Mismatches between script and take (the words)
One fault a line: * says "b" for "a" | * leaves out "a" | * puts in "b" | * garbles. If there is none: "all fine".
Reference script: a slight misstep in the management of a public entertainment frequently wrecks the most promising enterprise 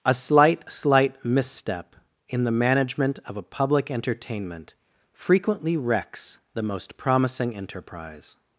* puts in "slight"